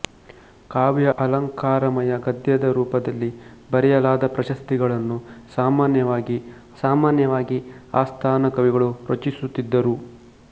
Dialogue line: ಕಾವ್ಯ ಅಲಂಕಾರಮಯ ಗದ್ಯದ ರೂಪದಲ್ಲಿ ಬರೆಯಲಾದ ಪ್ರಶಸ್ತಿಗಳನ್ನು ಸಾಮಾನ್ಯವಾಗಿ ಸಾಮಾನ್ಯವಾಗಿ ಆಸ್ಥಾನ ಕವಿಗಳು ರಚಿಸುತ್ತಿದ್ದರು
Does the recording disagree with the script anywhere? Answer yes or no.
no